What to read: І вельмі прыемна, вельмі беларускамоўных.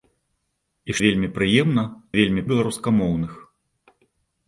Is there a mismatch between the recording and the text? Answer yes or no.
no